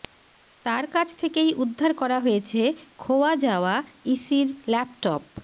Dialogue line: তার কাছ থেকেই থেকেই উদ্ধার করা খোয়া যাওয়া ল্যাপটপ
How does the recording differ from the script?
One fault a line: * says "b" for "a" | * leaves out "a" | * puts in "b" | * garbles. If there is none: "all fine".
* leaves out "থেকেই"
* puts in "হয়েছে"
* puts in "ইসির"